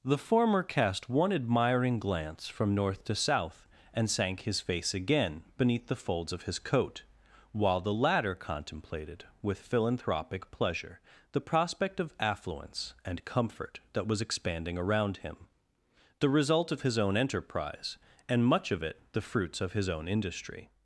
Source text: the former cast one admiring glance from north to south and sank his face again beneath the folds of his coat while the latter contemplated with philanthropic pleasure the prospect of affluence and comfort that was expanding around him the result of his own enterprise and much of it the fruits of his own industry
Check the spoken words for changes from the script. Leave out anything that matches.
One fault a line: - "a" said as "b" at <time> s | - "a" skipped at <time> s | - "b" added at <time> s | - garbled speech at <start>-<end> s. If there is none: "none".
none